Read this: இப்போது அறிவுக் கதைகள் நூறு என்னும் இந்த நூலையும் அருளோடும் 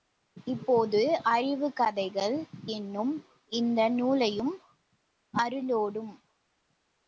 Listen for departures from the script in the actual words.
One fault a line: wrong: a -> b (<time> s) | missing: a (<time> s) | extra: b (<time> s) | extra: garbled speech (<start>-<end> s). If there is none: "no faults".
missing: நூறு (2.4 s)